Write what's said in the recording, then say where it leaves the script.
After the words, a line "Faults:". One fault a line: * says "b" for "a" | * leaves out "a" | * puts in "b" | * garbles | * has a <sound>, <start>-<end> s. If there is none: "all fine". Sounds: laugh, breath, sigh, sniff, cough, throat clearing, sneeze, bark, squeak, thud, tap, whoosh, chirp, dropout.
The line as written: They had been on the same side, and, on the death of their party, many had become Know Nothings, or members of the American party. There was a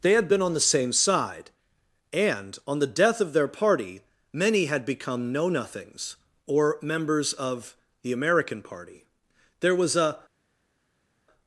They had been on the same side, and, on the death of their party, many had become Know Nothings, or members of the American party. There was a
Faults:
all fine